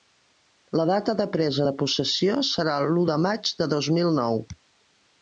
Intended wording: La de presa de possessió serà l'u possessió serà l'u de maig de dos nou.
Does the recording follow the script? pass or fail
fail